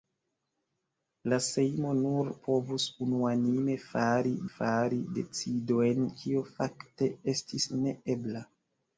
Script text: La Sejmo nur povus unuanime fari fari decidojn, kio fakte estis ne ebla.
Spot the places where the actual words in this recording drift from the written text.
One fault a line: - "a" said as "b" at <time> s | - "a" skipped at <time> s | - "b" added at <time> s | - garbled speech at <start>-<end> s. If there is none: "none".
none